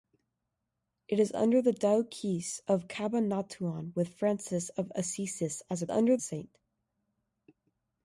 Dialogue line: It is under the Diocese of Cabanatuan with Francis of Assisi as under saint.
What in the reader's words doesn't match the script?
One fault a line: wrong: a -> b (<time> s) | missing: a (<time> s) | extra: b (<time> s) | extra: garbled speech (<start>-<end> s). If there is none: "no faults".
no faults